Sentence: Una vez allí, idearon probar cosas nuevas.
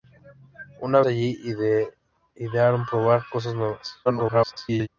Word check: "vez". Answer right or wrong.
wrong